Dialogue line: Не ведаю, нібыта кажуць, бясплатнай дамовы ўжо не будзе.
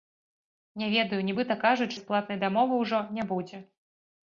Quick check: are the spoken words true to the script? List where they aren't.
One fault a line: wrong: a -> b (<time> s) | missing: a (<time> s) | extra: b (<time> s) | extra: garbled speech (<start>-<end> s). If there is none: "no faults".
no faults